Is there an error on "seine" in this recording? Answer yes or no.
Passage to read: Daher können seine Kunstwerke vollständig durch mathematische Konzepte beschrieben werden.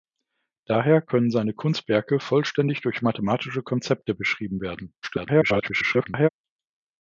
no